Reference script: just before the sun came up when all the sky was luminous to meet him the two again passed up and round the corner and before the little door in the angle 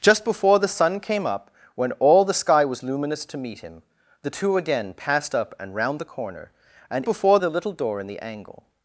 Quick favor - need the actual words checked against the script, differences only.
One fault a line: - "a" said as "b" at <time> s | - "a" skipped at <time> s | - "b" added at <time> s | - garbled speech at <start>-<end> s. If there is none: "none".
none